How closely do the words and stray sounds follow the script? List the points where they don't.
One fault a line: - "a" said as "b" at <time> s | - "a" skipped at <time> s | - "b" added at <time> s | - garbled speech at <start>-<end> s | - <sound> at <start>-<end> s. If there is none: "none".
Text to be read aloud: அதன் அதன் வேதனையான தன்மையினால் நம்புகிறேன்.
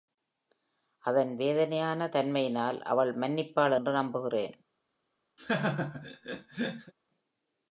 - "அதன்" skipped at 1.4 s
- "அவள் மன்னிப்பாள் என்று" added at 2.8 s
- laugh at 5.4-6.9 s